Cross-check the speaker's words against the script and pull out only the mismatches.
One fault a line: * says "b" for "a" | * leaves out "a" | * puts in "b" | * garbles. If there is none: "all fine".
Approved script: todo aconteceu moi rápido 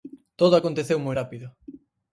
all fine